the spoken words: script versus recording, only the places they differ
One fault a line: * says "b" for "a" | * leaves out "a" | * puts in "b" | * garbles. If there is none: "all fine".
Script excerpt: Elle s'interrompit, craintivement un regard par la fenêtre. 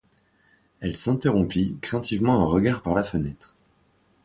all fine